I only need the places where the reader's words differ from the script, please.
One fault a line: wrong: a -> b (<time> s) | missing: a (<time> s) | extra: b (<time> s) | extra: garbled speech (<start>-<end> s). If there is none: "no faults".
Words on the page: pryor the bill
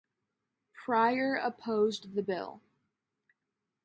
extra: opposed (1.4 s)